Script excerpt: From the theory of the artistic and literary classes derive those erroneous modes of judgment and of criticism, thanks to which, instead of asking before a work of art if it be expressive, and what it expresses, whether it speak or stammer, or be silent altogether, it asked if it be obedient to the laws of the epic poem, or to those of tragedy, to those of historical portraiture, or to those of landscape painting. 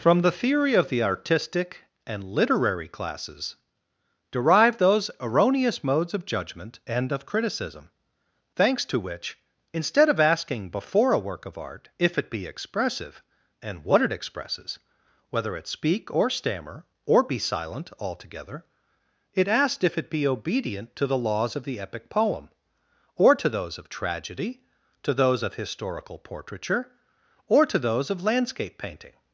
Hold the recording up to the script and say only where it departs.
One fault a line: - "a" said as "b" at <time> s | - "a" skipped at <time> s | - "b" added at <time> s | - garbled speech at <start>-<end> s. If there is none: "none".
none